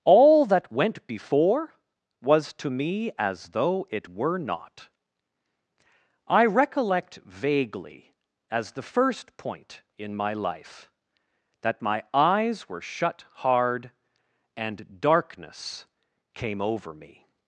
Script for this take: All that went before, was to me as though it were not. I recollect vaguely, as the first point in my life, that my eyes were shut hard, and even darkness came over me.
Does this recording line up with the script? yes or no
no